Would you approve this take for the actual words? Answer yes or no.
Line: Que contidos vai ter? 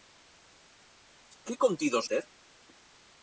no